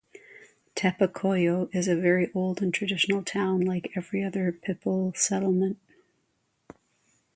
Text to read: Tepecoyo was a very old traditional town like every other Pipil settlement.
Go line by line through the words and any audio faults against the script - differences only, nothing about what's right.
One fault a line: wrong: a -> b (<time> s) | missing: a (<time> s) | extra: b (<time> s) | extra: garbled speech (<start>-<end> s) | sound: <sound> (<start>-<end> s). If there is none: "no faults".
wrong: was -> is (1.7 s)
extra: and (2.6 s)